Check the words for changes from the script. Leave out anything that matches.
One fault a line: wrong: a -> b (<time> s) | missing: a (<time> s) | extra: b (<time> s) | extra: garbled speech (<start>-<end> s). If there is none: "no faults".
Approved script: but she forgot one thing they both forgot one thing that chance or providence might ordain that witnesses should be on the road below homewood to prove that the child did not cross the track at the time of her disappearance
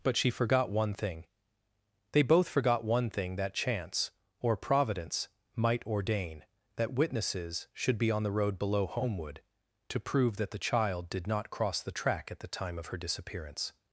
no faults